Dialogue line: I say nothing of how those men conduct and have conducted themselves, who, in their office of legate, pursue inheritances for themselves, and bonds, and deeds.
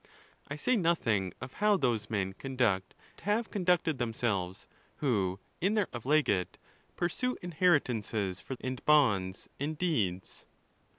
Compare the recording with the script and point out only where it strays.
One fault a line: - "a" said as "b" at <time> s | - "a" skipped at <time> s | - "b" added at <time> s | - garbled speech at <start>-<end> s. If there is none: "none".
- "and" skipped at 3.0 s
- "office" skipped at 5.9 s
- "themselves" skipped at 8.5 s